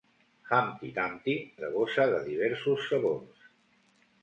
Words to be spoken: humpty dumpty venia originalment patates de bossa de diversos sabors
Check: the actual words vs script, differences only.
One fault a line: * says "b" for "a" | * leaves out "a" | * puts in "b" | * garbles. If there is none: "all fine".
* leaves out "venia originalment patates"